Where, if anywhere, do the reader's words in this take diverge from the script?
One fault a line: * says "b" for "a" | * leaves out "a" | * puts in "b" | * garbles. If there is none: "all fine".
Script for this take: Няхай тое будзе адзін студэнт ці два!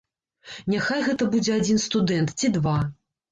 * says "гэта" for "тое"